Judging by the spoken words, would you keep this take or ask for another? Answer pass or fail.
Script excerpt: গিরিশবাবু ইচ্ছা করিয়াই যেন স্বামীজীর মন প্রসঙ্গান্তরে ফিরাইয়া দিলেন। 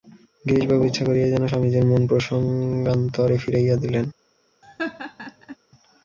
pass